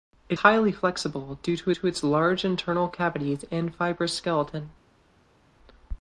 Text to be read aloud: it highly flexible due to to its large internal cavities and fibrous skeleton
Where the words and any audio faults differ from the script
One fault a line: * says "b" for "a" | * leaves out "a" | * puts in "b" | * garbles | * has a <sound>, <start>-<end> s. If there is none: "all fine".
all fine